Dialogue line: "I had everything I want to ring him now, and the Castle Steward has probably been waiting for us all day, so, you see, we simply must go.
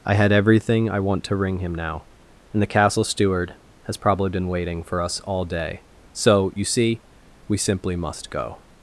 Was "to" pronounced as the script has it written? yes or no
yes